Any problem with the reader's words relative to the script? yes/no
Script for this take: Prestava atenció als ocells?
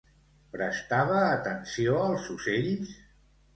no